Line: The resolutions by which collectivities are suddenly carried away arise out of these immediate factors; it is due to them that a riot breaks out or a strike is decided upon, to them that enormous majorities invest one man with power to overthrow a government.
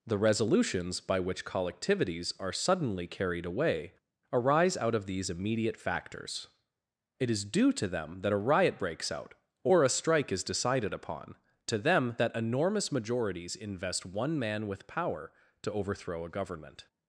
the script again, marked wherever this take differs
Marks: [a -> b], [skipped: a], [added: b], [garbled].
The resolutions by which collectivities are suddenly carried away arise out of these immediate factors; it is due to them that a riot breaks out or a strike is decided upon, to them that enormous majorities invest one man with power to overthrow a government.